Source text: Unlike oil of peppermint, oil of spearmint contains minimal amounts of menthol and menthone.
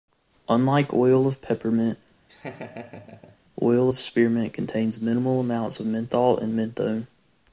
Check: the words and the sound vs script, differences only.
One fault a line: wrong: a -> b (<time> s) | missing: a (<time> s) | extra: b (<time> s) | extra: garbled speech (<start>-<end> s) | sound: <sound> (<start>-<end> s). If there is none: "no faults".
sound: laugh (2.3-3.4 s)